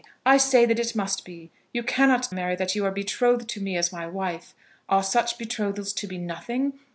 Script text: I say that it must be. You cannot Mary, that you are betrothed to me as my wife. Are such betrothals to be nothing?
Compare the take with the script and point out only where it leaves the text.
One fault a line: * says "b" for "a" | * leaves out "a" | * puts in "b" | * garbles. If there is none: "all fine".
all fine